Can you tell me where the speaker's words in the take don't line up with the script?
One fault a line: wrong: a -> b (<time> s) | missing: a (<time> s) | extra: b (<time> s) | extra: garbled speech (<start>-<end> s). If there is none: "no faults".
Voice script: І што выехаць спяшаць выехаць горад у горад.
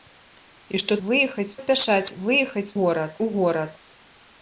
no faults